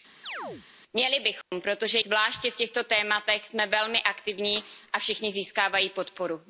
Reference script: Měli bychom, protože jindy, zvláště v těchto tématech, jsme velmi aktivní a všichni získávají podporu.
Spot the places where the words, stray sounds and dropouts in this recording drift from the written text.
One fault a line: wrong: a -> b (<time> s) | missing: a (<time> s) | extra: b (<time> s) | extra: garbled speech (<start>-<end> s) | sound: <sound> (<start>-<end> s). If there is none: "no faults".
sound: chirp (0.2-0.7 s)
sound: dropout (1.4-1.5 s)
missing: jindy (2.0 s)